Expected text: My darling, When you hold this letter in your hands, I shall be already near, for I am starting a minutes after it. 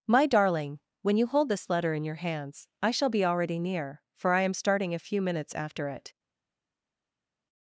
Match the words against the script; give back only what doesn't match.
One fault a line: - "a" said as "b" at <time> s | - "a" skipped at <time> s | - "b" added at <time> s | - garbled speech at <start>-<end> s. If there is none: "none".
- "few" added at 5.0 s